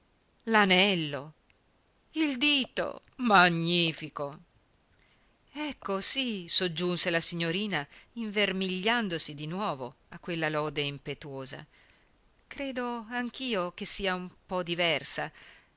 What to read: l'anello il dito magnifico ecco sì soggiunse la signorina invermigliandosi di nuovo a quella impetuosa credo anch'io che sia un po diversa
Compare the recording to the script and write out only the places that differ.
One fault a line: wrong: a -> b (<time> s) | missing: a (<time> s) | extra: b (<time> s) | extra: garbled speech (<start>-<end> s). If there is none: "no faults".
extra: lode (10.5 s)